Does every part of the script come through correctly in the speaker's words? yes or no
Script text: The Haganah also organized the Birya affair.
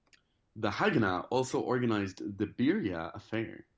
yes